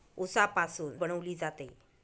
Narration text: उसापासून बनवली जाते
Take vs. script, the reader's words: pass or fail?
pass